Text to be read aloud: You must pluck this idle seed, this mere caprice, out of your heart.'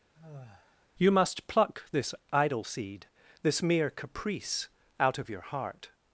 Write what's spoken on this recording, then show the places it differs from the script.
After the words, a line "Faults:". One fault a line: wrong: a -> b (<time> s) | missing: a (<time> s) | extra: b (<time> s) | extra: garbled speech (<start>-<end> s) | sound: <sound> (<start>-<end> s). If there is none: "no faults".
You must pluck this idle seed, this mere caprice, out of your heart.'
Faults:
sound: sigh (0.1-0.9 s)